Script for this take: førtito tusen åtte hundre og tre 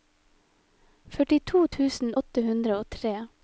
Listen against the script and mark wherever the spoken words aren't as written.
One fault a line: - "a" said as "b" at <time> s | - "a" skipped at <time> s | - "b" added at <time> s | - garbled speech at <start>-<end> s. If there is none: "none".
none